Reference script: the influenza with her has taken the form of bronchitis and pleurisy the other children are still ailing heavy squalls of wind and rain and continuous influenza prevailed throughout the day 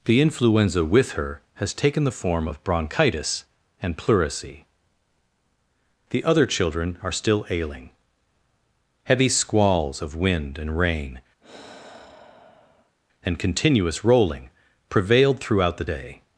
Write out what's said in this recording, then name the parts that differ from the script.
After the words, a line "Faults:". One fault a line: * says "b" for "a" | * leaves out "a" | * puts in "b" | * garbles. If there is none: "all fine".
the influenza with her has taken the form of bronchitis and pleurisy the other children are still ailing heavy squalls of wind and rain and continuous rolling prevailed throughout the day
Faults:
* says "rolling" for "influenza"